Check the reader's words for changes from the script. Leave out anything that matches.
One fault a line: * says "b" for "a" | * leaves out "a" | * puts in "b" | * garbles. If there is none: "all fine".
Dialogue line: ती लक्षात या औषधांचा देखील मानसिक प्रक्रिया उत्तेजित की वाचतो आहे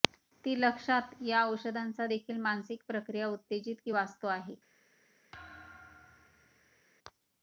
all fine